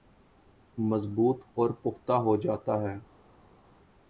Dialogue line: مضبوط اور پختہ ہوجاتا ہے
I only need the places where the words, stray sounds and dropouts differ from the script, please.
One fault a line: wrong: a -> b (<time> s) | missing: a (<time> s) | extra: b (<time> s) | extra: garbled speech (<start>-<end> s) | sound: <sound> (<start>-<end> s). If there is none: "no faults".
no faults